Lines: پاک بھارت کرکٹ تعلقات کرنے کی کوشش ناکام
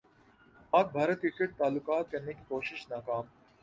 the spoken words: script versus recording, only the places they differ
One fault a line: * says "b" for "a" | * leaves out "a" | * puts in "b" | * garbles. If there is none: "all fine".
all fine